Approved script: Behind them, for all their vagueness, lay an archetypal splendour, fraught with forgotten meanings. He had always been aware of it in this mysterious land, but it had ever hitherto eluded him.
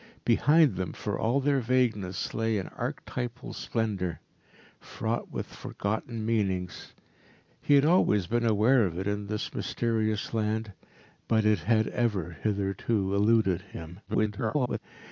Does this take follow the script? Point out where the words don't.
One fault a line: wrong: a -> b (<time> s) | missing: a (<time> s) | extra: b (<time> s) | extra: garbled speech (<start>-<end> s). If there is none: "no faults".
extra: garbled speech (14.1-14.8 s)